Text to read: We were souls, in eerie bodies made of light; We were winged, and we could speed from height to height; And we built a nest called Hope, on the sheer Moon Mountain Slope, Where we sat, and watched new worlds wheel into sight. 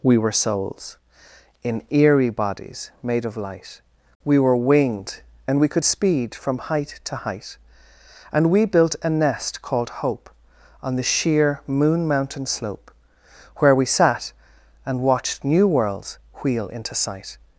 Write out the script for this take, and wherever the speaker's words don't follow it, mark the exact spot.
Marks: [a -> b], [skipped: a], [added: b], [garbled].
We were souls, in eerie bodies made of light; We were winged, and we could speed from height to height; And we built a nest called Hope, on the sheer Moon Mountain Slope, Where we sat, and watched new worlds wheel into sight.